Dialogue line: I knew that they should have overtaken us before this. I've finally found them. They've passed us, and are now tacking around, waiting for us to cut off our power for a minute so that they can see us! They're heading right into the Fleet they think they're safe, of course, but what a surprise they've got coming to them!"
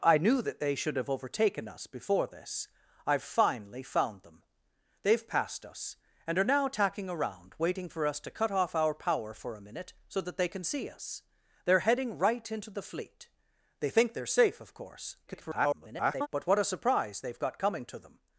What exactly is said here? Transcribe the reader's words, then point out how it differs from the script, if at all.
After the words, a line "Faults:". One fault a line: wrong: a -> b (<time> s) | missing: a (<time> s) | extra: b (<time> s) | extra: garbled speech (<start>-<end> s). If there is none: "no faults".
I knew that they should have overtaken us before this. I've finally found them. They've passed us, and are now tacking around, waiting for us to cut off our power for a minute so that they can see us! They're heading right into the Fleet they think they're safe, of course, [garbled] but what a surprise they've got coming to them!"
Faults:
extra: garbled speech (15.3-16.3 s)